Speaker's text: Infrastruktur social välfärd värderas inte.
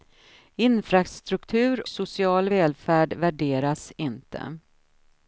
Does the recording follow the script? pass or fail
pass